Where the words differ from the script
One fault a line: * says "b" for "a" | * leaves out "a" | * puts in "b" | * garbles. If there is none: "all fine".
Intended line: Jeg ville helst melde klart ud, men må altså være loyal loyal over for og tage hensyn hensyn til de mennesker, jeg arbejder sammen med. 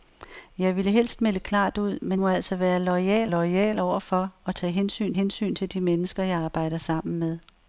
all fine